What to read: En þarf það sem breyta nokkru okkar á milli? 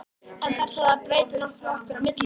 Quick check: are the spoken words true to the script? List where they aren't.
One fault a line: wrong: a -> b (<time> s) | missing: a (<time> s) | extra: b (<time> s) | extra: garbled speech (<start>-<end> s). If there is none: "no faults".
wrong: sem -> að (0.9 s)